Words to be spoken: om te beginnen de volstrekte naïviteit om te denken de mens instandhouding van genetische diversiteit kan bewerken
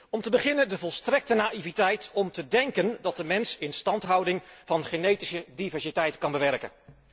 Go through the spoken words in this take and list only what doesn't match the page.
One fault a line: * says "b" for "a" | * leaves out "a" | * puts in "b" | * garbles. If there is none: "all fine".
* puts in "dat"